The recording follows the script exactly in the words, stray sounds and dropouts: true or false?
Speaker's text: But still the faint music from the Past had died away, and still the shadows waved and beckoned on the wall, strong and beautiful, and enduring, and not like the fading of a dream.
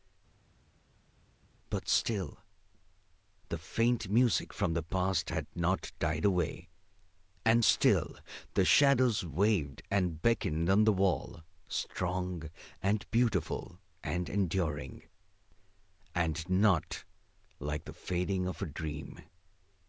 false